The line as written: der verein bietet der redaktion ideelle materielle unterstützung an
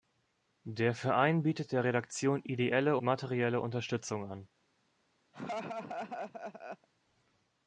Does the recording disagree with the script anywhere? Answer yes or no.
no